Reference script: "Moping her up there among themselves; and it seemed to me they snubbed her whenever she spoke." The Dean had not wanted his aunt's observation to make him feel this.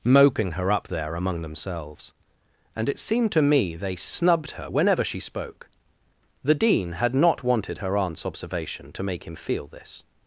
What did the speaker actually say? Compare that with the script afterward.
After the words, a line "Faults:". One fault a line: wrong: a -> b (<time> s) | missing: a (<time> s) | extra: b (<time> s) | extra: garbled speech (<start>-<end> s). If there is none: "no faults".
"Moping her up there among themselves; and it seemed to me they snubbed her whenever she spoke." The Dean had not wanted her aunt's observation to make him feel this.
Faults:
wrong: his -> her (7.8 s)